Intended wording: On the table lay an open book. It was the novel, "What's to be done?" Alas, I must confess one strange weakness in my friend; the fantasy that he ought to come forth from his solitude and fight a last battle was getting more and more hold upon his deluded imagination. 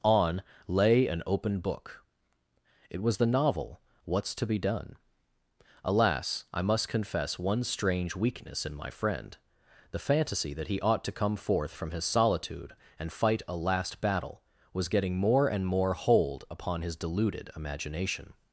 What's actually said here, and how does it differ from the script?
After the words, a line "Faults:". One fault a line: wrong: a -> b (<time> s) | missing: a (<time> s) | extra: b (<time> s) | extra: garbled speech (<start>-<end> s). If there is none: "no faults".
On lay an open book. It was the novel, "What's to be done?" Alas, I must confess one strange weakness in my friend; the fantasy that he ought to come forth from his solitude and fight a last battle was getting more and more hold upon his deluded imagination.
Faults:
missing: the table (0.4 s)